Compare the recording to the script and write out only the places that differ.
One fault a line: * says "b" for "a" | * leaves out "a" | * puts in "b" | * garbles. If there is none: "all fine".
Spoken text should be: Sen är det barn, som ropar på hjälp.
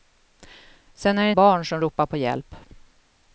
all fine